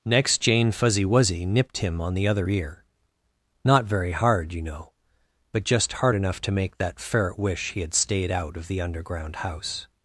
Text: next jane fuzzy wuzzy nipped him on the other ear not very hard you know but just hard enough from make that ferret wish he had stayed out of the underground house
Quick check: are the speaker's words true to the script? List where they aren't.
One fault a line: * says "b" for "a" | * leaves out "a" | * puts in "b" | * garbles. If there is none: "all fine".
* says "to" for "from"